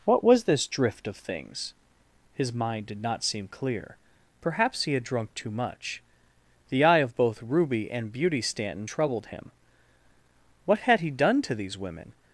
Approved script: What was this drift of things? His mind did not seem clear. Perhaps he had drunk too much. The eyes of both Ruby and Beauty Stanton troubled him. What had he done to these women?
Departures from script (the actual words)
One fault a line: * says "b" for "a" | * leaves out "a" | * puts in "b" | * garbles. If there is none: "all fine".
* says "eye" for "eyes"